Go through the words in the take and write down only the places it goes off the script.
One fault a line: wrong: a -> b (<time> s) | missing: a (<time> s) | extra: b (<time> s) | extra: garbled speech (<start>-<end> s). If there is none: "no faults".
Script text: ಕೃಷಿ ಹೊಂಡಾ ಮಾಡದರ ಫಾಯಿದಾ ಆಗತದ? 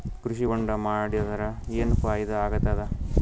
extra: ಏನ್ (1.8 s)